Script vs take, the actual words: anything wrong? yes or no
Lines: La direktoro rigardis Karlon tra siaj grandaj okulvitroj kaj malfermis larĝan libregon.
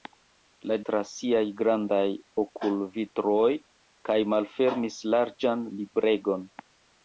yes